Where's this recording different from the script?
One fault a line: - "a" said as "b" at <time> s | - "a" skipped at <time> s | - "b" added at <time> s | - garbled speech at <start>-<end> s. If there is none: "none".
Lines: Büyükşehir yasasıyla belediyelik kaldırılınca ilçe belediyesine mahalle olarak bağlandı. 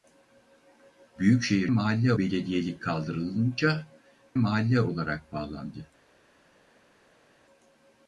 - "yasasıyla" said as "mahalle" at 1.7 s
- "ilçe belediyesine" skipped at 3.9 s